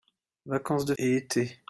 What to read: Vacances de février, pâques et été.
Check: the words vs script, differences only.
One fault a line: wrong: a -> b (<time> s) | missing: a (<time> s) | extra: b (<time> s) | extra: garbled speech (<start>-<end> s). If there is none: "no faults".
missing: février pâques (0.9 s)